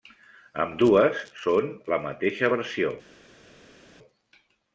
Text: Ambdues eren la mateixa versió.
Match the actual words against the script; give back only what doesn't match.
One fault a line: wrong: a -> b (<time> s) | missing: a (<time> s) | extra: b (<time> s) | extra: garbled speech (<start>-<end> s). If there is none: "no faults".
wrong: eren -> són (1.4 s)